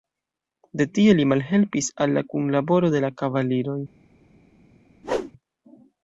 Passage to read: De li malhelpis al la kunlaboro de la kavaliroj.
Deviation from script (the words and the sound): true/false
true